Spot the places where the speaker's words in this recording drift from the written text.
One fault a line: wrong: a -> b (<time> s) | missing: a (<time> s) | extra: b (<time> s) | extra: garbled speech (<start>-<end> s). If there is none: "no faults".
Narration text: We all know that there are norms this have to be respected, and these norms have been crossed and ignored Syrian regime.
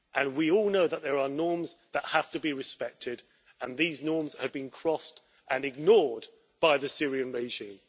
wrong: this -> that (1.9 s)
extra: by the (6.6 s)